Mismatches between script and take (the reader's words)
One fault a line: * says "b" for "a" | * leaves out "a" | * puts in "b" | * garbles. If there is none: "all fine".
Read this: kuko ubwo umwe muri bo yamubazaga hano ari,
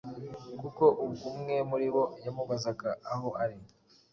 * says "aho" for "hano"